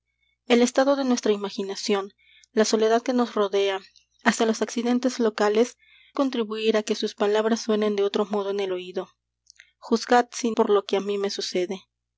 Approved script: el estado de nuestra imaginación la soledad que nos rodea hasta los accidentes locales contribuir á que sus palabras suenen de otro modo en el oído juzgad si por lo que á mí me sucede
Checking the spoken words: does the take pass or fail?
pass